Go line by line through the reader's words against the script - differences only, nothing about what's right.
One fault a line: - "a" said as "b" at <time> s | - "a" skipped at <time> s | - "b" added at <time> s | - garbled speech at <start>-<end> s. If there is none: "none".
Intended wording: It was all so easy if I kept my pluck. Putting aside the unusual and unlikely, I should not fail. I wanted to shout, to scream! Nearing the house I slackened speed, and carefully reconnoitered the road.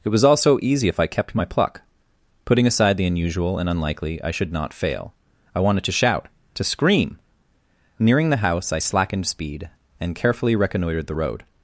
none